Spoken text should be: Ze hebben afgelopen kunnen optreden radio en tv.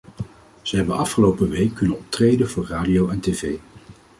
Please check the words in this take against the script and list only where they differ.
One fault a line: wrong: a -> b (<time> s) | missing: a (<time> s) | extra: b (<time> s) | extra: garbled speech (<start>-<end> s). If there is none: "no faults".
extra: week (1.5 s)
extra: voor (2.5 s)